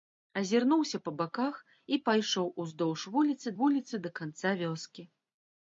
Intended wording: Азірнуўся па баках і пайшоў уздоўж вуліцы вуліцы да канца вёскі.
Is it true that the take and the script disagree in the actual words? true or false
false